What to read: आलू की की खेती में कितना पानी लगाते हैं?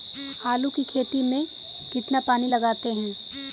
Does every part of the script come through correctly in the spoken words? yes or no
no